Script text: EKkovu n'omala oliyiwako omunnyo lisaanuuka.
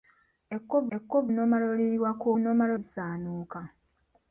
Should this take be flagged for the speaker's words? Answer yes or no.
yes